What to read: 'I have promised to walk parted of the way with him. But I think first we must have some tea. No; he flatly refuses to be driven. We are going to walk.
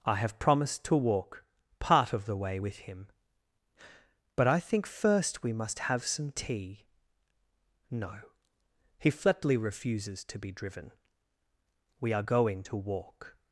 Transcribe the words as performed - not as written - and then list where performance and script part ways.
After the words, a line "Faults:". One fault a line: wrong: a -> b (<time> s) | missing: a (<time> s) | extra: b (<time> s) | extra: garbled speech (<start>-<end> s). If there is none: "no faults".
'I have promised to walk part of the way with him. But I think first we must have some tea. No; he flatly refuses to be driven. We are going to walk.
Faults:
wrong: parted -> part (1.8 s)